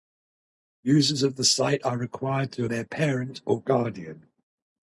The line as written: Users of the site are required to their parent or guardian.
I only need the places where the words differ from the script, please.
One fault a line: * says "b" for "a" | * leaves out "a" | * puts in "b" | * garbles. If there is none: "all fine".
all fine